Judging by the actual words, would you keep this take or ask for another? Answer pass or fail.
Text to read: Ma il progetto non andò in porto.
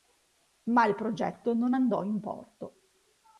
pass